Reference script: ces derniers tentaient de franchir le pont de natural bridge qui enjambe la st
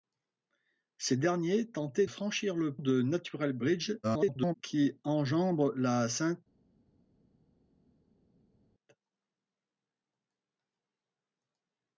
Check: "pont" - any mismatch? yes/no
yes